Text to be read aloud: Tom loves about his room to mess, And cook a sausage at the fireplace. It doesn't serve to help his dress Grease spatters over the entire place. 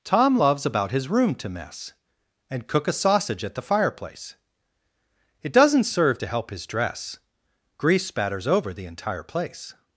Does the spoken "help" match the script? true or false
true